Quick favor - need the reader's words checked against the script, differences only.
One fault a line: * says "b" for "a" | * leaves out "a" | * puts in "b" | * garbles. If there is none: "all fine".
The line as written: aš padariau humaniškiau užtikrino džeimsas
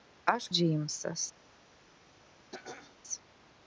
* leaves out "padariau humaniškiau užtikrino"